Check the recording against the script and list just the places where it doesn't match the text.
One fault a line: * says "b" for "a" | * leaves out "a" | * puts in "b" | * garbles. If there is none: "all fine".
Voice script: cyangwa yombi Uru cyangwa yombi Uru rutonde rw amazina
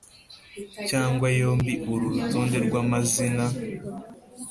* leaves out "cyangwa yombi Uru"